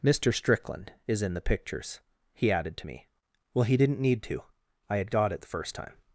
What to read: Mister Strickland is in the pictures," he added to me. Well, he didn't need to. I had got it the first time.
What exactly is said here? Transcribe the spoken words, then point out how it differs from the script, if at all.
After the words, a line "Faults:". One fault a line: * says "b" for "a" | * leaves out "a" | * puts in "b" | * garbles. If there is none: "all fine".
Mister Strickland is in the pictures," he added to me. Well, he didn't need to. I had got it the first time.
Faults:
all fine